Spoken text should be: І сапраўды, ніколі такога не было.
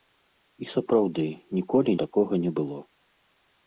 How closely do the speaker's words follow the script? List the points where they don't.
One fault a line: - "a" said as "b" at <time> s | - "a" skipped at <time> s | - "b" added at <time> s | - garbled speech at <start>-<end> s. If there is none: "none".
none